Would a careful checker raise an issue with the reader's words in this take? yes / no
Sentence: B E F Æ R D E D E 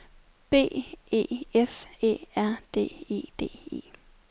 no